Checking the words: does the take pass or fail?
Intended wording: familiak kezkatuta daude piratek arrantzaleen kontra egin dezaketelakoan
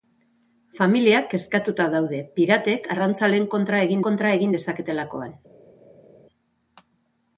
fail